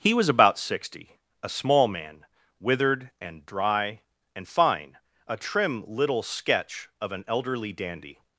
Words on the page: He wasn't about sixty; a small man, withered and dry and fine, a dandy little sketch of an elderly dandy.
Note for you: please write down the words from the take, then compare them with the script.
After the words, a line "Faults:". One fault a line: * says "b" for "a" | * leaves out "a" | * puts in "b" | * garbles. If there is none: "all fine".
He was about sixty; a small man, withered and dry and fine, a trim little sketch of an elderly dandy.
Faults:
* says "was" for "wasn't"
* says "trim" for "dandy"